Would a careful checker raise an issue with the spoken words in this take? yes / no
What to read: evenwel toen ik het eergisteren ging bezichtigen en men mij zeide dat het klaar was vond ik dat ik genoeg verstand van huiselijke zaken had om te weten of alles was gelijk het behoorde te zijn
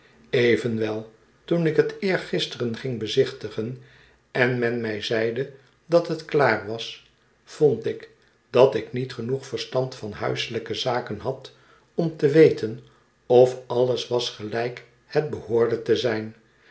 yes